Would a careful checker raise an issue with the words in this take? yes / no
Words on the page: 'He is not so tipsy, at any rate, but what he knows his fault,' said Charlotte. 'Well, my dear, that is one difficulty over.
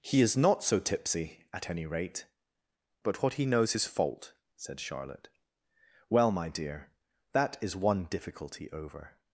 no